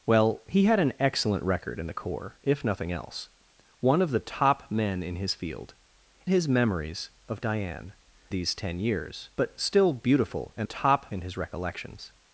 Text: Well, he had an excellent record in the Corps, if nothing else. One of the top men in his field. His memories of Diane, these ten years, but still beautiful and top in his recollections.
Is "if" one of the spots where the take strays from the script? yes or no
no